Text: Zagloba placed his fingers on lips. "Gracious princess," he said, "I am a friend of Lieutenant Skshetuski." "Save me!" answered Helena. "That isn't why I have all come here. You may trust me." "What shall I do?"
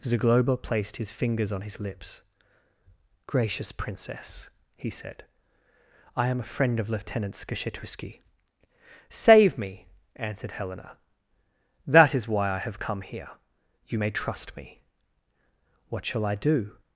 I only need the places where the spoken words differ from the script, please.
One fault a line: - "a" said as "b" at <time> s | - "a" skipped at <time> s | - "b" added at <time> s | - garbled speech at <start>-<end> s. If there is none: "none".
- "his" added at 1.6 s
- "isn't" said as "is" at 12.1 s
- "all" skipped at 12.8 s